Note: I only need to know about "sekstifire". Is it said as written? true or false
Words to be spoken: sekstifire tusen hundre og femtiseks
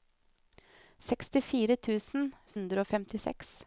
true